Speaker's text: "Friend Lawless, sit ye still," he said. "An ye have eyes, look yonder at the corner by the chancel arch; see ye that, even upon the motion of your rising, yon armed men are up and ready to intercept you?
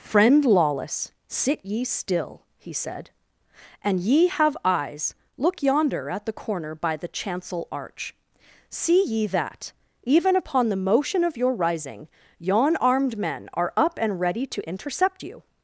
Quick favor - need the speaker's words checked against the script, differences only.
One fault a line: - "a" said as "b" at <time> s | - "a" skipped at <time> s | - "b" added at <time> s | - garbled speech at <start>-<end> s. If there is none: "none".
none